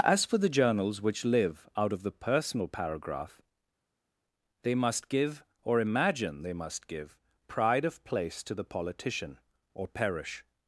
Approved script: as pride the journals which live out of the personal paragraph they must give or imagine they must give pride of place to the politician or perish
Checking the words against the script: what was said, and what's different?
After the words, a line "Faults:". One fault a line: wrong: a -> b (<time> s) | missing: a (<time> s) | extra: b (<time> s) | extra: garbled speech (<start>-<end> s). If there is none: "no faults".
as for the journals which live out of the personal paragraph they must give or imagine they must give pride of place to the politician or perish
Faults:
wrong: pride -> for (0.2 s)